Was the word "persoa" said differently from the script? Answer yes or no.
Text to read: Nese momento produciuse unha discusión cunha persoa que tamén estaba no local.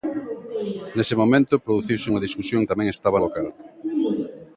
yes